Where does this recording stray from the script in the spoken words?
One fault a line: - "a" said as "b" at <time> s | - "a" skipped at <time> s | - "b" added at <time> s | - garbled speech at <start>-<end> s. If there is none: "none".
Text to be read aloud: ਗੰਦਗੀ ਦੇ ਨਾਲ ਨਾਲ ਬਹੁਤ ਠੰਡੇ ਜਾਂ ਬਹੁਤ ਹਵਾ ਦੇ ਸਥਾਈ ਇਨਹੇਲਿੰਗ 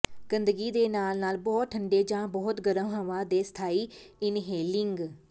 - "ਗਰਮ" added at 2.6 s